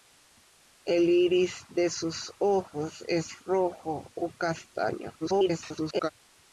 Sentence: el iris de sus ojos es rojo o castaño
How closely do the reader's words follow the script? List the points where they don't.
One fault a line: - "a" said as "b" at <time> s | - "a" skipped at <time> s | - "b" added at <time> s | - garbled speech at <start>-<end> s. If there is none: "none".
- garbled speech at 5.2-6.1 s